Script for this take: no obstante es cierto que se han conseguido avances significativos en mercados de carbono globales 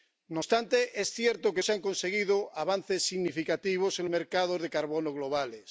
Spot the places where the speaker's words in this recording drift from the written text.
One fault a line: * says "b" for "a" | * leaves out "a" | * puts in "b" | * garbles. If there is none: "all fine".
all fine